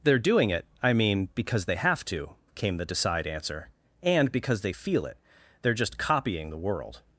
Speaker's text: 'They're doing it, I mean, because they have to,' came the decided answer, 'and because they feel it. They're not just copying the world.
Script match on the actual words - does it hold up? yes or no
no